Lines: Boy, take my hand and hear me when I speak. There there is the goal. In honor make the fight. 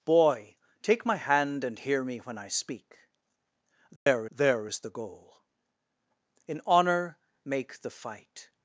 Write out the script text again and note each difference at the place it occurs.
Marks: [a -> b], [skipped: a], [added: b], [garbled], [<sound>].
Boy, take my hand and hear me when I speak. There [dropout] there is the goal. In honor make the fight.